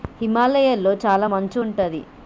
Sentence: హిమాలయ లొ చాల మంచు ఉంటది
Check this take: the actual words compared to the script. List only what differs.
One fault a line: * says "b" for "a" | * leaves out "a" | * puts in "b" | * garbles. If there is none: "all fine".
all fine